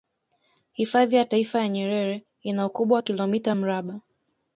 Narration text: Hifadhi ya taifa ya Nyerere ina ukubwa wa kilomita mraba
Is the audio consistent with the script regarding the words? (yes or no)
yes